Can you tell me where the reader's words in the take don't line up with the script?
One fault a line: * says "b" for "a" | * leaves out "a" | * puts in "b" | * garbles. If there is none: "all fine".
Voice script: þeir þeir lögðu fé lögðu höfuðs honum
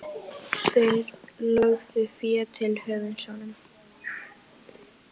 * leaves out "þeir"
* says "til" for "lögðu"